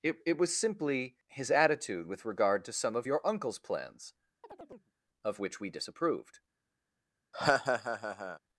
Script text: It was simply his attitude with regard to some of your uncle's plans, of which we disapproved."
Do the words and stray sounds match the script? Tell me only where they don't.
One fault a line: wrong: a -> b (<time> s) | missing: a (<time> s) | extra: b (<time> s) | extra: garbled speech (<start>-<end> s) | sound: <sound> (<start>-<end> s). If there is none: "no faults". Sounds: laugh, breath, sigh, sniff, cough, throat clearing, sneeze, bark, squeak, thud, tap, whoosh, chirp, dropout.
extra: it (0.2 s)
sound: chirp (4.4-4.9 s)
sound: laugh (7.3-8.4 s)